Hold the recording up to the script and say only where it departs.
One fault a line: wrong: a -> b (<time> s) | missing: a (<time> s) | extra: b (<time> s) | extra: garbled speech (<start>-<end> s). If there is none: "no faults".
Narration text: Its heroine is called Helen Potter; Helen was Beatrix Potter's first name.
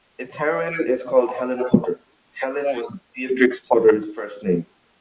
no faults